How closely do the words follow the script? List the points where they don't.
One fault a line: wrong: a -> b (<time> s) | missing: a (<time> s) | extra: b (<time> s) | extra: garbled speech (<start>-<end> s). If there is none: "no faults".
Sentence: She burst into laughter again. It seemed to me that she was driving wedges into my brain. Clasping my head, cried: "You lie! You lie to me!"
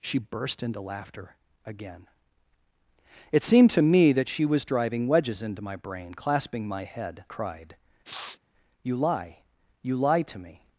no faults